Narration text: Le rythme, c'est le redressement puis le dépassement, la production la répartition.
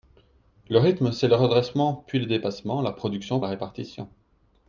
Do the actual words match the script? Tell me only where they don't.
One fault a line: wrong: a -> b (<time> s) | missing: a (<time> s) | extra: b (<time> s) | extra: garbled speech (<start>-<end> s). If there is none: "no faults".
no faults